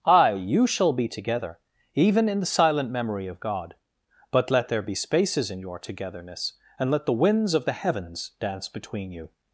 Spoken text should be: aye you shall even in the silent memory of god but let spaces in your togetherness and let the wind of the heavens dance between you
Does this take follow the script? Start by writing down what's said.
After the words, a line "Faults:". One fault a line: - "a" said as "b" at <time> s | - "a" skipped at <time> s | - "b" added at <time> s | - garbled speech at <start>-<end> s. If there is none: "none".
aye you shall be together even in the silent memory of god but let there be spaces in your togetherness and let the winds of the heavens dance between you
Faults:
- "be together" added at 0.9 s
- "there be" added at 4.7 s
- "wind" said as "winds" at 7.1 s